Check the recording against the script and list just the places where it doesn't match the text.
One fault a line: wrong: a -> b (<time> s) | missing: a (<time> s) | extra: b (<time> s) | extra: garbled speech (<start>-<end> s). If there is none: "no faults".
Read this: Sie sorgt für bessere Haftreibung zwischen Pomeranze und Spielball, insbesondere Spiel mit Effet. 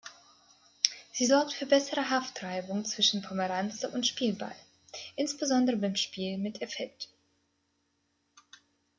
extra: beim (5.7 s)